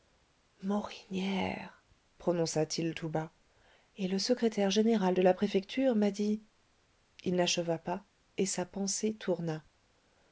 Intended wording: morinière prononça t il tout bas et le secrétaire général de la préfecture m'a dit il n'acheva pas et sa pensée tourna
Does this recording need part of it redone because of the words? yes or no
no